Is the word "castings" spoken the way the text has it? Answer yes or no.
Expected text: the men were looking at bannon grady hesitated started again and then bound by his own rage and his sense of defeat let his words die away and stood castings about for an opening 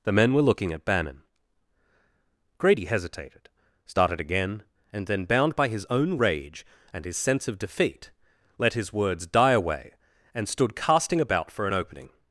no